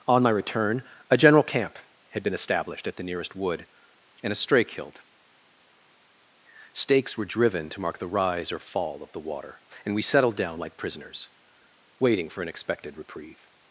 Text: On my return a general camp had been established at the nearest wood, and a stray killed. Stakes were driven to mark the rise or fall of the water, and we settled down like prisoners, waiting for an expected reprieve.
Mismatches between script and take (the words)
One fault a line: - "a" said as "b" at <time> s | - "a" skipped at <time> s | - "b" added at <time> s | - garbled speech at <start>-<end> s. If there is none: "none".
none